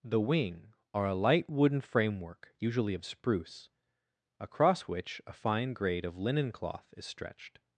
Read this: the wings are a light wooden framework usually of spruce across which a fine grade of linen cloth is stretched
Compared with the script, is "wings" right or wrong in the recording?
wrong